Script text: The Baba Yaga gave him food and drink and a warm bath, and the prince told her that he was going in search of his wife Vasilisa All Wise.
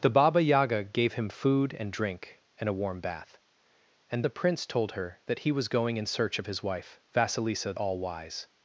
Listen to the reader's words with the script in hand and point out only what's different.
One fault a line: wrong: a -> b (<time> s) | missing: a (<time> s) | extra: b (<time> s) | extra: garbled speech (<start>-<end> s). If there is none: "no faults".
no faults